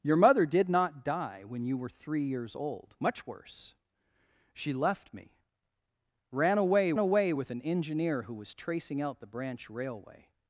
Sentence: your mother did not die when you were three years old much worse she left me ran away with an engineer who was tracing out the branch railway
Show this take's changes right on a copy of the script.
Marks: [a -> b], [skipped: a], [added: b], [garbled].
your mother did not die when you were three years old much worse she left me ran away [added: away] with an engineer who was tracing out the branch railway